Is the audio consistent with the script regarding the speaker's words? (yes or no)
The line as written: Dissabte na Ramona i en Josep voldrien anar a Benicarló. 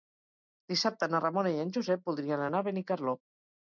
yes